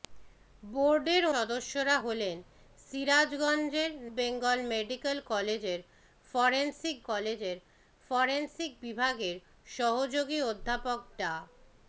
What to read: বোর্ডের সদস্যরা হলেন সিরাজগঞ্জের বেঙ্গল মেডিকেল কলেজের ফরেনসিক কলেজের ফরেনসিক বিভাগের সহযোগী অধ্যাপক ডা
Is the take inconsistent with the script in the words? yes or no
no